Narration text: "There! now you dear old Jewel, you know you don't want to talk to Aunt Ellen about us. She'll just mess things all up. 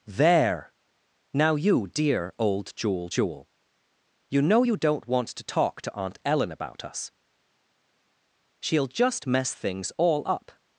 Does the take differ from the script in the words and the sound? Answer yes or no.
yes